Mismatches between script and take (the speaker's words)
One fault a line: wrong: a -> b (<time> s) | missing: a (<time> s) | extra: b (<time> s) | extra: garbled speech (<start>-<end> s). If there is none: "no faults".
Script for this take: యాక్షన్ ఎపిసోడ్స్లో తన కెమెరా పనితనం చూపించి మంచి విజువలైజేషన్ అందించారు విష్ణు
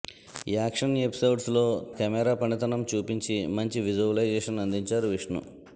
missing: తన (1.6 s)